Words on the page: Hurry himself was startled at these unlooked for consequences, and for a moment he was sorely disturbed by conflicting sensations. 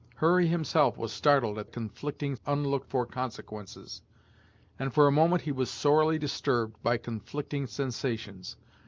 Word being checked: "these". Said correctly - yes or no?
no